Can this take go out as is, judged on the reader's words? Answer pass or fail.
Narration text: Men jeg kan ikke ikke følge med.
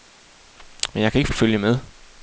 pass